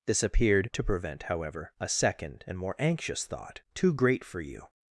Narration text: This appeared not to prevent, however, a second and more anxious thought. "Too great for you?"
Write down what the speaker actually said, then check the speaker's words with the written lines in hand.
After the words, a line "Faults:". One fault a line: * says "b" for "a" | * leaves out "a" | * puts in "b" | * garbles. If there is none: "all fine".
This appeared to prevent, however, a second and more anxious thought. "Too great for you?"
Faults:
* leaves out "not"